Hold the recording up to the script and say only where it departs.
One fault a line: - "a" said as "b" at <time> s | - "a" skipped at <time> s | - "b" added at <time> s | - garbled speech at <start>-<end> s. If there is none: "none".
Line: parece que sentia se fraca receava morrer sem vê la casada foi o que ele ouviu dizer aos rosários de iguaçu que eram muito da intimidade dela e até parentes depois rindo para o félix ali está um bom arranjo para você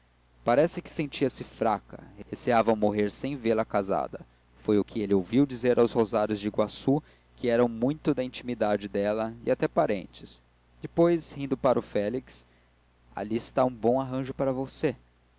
none